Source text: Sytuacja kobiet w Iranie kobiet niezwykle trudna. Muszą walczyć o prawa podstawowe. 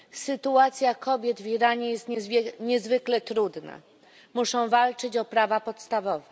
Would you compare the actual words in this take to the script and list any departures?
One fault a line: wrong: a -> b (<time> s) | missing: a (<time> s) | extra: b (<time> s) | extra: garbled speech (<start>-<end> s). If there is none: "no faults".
wrong: kobiet -> jest (1.9 s)